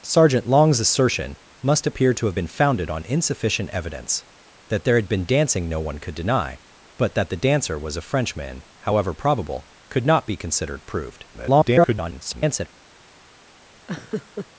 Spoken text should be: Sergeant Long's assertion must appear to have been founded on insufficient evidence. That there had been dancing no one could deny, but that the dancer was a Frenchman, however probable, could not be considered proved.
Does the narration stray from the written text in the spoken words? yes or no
yes